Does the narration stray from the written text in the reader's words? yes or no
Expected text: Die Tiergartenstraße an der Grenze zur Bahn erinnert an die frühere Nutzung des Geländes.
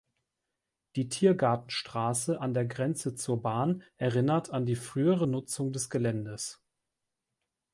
no